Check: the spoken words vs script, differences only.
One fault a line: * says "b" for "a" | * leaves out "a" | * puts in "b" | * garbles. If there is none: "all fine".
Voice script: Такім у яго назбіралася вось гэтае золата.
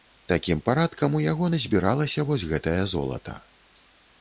* puts in "парадкам"